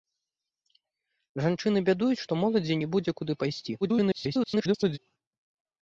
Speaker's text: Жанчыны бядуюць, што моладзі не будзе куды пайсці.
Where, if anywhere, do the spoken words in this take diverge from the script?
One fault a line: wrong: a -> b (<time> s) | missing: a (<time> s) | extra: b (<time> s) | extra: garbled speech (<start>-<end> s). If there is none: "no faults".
extra: garbled speech (3.8-5.0 s)